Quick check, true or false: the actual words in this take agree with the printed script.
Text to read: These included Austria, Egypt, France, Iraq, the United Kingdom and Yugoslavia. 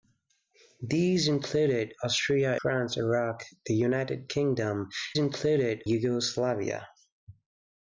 false